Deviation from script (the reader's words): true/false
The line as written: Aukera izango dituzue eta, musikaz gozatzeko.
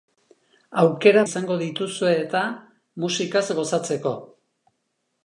false